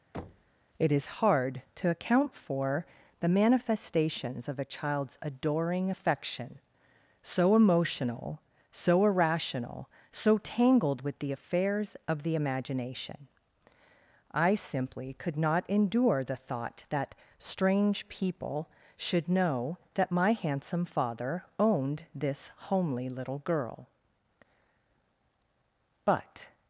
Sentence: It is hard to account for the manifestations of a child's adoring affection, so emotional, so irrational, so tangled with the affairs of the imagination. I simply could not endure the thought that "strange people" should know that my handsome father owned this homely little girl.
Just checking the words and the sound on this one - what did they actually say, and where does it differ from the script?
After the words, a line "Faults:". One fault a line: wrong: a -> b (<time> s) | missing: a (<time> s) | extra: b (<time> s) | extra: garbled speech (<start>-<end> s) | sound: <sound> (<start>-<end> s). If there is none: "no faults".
It is hard to account for the manifestations of a child's adoring affection, so emotional, so irrational, so tangled with the affairs of the imagination. I simply could not endure the thought that "strange people" should know that my handsome father owned this homely little girl. But
Faults:
sound: thud (0.1-0.5 s)
extra: But (26.0 s)